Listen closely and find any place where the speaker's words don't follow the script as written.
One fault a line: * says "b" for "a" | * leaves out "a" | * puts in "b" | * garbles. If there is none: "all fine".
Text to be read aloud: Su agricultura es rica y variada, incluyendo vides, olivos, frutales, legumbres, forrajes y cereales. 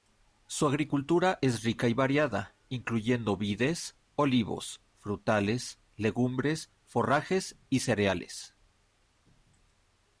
all fine